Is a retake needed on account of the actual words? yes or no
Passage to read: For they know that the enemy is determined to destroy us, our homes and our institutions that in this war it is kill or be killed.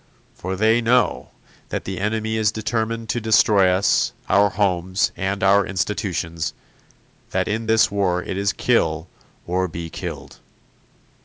no